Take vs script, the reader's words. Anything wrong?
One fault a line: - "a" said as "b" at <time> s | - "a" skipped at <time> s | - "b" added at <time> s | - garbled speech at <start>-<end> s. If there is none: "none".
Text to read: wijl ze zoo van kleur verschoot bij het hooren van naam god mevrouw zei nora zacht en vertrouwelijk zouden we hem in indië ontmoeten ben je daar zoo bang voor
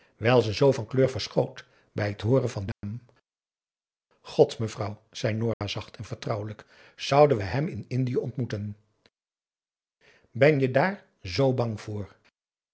none